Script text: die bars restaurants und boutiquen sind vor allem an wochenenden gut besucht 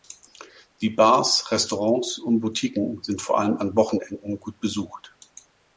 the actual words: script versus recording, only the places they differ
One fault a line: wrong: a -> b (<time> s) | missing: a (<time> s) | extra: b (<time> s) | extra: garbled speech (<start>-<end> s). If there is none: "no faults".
no faults